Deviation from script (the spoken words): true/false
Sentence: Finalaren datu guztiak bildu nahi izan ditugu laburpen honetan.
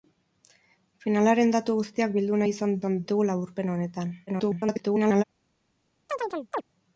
true